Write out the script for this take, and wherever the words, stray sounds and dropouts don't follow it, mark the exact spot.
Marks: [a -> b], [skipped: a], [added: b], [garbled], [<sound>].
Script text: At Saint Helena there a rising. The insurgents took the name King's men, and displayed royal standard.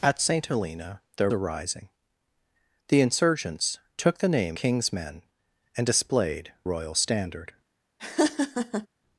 At Saint Helena there a rising. The insurgents took the name King's men, and displayed royal standard. [laugh]